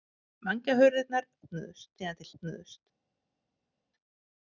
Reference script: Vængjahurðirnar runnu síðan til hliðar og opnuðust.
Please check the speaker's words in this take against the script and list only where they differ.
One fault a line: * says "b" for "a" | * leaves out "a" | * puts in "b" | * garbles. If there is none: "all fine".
* says "opnuðust" for "runnu"
* leaves out "hliðar og"